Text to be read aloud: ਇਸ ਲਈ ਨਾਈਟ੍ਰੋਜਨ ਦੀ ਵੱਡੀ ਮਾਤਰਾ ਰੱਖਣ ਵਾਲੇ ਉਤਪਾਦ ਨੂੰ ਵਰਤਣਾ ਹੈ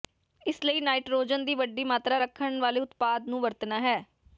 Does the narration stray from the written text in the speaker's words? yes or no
no